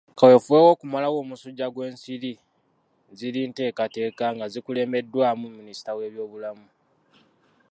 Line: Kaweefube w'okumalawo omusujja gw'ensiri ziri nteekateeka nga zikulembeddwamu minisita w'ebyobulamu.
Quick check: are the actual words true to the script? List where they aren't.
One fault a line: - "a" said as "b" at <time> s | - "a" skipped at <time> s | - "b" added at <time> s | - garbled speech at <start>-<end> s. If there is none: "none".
none